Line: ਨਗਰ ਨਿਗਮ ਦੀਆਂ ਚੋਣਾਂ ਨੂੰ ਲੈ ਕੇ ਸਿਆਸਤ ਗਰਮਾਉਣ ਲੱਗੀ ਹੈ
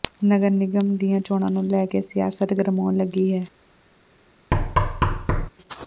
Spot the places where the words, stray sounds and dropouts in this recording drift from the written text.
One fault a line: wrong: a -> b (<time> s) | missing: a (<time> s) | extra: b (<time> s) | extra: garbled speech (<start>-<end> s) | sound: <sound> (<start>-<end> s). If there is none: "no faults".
sound: thud (4.5-5.5 s)